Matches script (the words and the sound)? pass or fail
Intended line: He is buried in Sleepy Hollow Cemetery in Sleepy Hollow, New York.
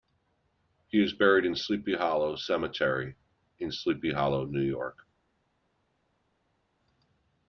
pass